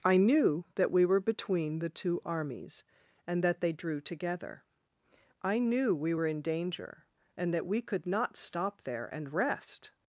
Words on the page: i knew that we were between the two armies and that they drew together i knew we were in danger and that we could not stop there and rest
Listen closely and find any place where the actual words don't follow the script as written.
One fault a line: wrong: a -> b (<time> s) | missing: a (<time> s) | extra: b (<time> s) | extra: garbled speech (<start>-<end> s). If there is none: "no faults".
no faults